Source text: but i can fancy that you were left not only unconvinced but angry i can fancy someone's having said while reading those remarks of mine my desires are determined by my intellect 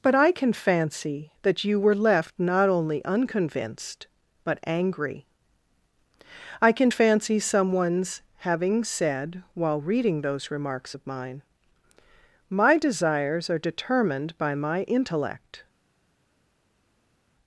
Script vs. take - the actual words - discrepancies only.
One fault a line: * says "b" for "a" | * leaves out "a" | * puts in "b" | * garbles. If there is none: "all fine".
all fine